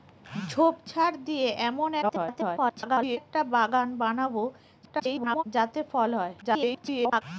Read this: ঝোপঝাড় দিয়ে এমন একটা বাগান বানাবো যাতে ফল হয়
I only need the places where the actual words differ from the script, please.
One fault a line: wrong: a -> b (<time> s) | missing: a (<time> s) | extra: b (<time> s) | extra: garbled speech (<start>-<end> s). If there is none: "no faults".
extra: garbled speech (2.0-3.2 s)
extra: garbled speech (4.8-5.4 s)
extra: garbled speech (6.4-7.2 s)